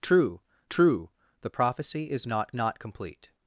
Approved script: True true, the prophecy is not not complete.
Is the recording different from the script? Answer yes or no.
no